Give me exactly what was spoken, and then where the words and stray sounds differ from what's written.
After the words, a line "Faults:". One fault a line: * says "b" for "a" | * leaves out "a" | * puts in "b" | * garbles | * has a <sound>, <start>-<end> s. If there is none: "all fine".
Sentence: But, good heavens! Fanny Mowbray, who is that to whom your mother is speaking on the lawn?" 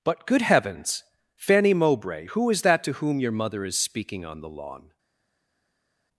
But, good heavens! Fanny Mowbray, who is that to whom your mother is speaking on the lawn?"
Faults:
all fine